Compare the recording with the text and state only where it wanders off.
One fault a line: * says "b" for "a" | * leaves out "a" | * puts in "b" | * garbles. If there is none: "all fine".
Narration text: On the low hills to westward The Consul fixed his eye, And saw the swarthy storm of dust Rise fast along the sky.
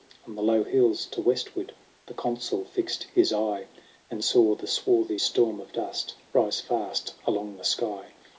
all fine